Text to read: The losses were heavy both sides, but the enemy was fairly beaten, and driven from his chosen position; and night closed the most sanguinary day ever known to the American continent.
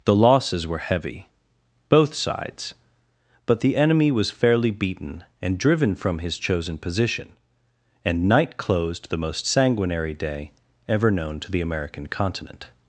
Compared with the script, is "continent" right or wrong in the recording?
right